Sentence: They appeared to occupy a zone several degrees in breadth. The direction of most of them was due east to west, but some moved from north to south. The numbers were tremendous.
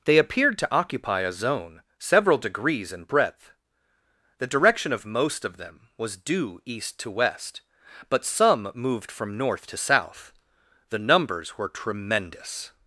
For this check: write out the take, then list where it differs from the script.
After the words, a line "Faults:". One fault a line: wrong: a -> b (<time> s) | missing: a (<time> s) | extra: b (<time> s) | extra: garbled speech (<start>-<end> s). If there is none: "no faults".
They appeared to occupy a zone several degrees in breadth. The direction of most of them was due east to west, but some moved from north to south. The numbers were tremendous.
Faults:
no faults